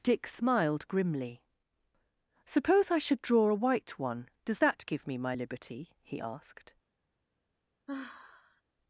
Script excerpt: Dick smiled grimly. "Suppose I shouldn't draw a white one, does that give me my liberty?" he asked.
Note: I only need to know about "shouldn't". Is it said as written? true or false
false